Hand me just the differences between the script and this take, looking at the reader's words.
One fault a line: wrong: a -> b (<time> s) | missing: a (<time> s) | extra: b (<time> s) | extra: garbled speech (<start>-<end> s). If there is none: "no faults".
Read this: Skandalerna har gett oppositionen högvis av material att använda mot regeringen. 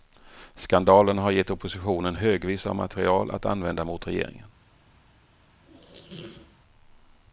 no faults